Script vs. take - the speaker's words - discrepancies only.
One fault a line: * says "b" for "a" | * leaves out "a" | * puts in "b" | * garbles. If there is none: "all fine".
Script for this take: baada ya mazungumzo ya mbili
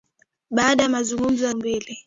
all fine